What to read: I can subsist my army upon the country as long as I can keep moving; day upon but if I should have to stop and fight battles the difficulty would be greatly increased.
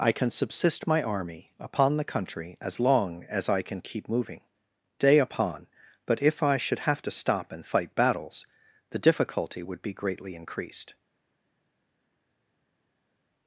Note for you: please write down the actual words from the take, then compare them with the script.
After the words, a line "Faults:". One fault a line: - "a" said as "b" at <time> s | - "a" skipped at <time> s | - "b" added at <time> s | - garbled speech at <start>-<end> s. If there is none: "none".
I can subsist my army upon the country as long as I can keep moving; day upon but if I should have to stop and fight battles the difficulty would be greatly increased.
Faults:
none